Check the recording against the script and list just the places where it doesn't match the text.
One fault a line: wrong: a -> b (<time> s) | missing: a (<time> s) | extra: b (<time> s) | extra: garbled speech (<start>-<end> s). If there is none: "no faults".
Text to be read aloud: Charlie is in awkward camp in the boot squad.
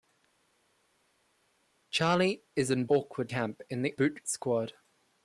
no faults